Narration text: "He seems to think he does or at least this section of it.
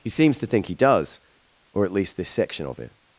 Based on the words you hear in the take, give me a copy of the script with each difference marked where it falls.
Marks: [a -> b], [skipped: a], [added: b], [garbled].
"He seems to think he does or at least this section of it.